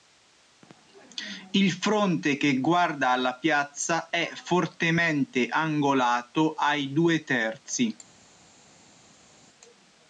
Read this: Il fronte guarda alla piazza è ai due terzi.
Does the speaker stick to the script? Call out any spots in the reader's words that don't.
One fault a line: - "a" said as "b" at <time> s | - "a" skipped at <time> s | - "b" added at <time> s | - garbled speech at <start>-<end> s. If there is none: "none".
- "che" added at 2.4 s
- "fortemente angolato" added at 4.3 s